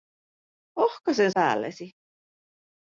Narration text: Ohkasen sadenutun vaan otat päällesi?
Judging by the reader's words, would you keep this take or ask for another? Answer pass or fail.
fail